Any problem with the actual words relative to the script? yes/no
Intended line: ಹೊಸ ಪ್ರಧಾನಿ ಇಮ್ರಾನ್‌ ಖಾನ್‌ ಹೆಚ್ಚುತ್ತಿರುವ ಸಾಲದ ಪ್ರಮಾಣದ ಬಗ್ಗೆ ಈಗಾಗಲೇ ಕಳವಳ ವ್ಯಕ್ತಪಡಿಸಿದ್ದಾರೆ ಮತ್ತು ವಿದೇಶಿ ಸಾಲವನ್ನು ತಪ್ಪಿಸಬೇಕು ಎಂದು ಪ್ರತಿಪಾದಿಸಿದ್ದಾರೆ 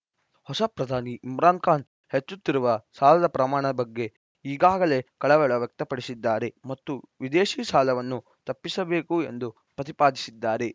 no